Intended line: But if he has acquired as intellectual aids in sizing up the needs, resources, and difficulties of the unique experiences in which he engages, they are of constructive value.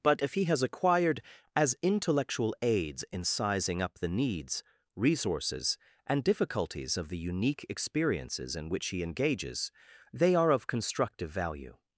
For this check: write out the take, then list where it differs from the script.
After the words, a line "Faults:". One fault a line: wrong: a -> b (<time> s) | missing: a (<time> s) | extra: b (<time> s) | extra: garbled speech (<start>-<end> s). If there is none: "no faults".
But if he has acquired as intellectual aids in sizing up the needs, resources, and difficulties of the unique experiences in which he engages, they are of constructive value.
Faults:
no faults